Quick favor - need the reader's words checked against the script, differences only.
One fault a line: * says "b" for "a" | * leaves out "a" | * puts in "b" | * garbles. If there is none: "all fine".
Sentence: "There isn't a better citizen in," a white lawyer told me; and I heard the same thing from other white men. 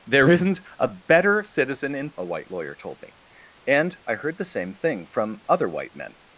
all fine